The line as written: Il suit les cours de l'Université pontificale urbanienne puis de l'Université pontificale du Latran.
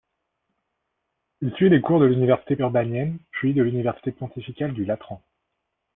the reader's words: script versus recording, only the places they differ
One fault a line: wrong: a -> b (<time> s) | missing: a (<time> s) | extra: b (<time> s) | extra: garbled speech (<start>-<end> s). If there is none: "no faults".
missing: pontificale (2.5 s)